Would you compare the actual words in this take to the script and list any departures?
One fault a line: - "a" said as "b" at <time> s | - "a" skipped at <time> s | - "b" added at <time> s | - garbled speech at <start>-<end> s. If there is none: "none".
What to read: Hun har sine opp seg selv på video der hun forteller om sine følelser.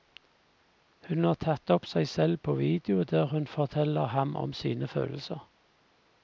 - "sine" said as "tatt" at 1.4 s
- "ham" added at 4.2 s